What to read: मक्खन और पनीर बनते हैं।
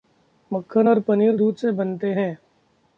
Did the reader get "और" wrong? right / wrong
right